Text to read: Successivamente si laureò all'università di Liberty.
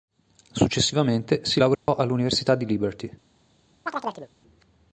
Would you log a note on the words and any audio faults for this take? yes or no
yes